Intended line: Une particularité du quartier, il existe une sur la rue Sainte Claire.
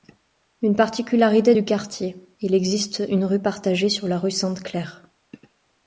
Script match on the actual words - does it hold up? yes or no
no